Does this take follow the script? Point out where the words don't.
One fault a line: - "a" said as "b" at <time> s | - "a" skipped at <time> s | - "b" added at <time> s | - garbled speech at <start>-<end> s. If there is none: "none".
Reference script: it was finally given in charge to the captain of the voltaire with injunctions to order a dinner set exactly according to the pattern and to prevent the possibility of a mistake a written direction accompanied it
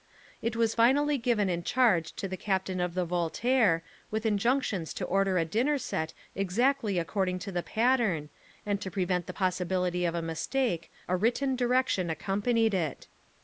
none